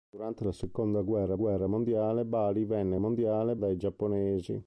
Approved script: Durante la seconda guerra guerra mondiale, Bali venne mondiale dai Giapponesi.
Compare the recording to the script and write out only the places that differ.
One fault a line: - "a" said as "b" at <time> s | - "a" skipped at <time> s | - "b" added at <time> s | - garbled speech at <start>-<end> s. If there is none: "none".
none